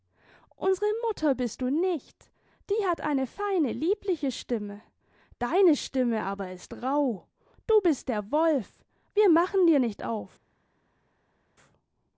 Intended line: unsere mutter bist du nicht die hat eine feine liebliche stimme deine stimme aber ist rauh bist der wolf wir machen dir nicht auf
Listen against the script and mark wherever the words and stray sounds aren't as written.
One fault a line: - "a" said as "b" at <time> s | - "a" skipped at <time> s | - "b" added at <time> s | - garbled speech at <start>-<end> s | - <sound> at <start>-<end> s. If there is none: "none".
- "du" added at 7.7 s